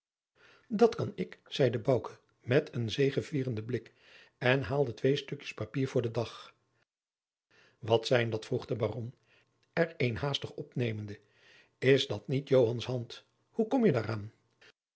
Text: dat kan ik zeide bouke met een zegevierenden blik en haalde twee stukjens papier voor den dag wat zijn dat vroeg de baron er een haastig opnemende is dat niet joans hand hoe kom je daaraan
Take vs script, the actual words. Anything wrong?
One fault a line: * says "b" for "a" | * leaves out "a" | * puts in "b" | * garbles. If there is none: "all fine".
all fine